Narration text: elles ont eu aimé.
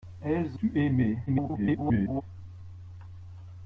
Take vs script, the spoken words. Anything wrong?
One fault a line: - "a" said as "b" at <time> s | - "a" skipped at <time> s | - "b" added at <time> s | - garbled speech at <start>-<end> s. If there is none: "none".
- "ont" skipped at 0.6 s
- garbled speech at 1.3-2.2 s